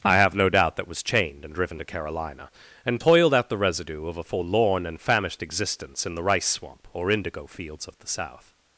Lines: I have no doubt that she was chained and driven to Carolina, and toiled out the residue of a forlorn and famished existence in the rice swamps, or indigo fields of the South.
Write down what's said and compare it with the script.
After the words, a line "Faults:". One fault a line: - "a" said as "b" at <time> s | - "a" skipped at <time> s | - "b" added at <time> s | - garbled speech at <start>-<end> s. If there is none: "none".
I have no doubt that was chained and driven to Carolina, and toiled out the residue of a forlorn and famished existence in the rice swamp, or indigo fields of the South.
Faults:
- "she" skipped at 0.9 s
- "swamps" said as "swamp" at 6.5 s